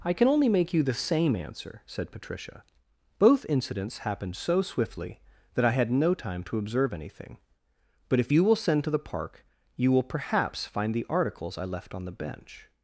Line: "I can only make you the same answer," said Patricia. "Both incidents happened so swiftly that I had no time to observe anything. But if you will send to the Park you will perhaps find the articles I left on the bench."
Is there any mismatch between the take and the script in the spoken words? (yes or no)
no